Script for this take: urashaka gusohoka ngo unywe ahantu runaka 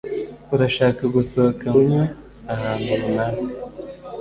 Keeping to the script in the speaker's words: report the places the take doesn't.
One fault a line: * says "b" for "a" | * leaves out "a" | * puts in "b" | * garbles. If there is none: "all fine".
* leaves out "ngo"